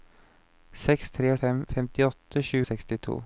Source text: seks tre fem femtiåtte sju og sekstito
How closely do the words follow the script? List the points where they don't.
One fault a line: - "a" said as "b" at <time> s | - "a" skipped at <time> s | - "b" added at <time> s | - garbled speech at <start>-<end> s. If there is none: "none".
none